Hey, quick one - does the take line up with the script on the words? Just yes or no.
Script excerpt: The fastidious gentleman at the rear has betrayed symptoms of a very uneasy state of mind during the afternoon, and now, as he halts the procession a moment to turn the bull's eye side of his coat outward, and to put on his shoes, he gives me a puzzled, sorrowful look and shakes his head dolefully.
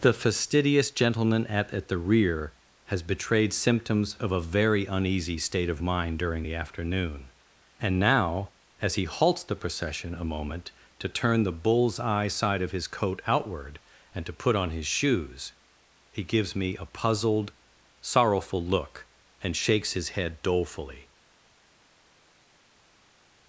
no